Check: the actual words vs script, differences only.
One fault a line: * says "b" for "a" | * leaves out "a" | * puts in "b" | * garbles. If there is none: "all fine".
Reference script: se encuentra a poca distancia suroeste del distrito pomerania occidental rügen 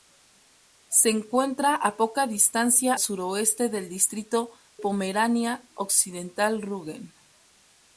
all fine